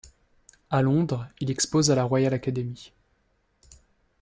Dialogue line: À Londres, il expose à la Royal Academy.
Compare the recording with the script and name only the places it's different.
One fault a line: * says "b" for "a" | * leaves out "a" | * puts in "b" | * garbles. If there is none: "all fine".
all fine